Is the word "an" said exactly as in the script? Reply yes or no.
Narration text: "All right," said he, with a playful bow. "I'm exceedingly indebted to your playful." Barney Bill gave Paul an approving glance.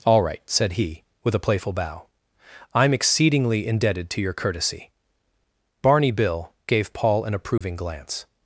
yes